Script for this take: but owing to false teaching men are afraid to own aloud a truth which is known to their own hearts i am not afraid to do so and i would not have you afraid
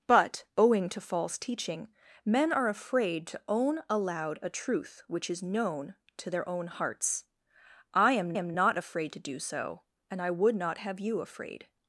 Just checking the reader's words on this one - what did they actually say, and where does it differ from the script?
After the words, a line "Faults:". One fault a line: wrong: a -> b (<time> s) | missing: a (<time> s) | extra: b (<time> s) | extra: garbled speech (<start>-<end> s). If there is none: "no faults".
but owing to false teaching men are afraid to own aloud a truth which is known to their own hearts i am am not afraid to do so and i would not have you afraid
Faults:
extra: am (8.3 s)